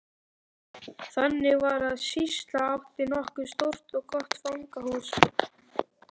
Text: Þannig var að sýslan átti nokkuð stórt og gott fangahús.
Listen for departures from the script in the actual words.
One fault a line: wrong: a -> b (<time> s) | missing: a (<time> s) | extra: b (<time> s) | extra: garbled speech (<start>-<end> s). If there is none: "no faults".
no faults